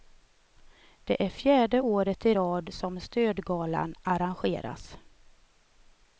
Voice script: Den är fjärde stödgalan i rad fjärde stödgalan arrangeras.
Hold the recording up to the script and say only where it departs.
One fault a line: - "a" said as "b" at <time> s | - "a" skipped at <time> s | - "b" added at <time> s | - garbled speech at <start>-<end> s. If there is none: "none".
- "Den" said as "Det" at 1.0 s
- "stödgalan" said as "året" at 1.8 s
- "fjärde" said as "som" at 2.7 s